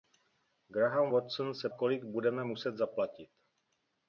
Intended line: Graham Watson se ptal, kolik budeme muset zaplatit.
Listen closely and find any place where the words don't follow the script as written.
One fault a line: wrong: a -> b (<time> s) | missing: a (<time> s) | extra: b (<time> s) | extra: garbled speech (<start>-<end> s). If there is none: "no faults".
missing: ptal (1.7 s)